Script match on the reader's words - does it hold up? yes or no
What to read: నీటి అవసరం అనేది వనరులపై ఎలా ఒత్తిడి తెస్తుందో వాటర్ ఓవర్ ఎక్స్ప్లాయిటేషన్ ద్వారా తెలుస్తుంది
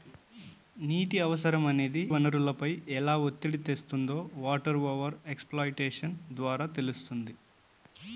yes